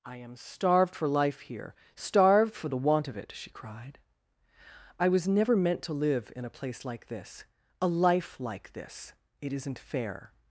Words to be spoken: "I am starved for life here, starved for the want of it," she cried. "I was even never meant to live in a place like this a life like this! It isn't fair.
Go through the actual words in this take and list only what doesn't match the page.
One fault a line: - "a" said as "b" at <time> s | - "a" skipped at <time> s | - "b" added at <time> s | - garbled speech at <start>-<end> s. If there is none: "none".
- "even" skipped at 5.3 s